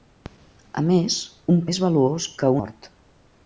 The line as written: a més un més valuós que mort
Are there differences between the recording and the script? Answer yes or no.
no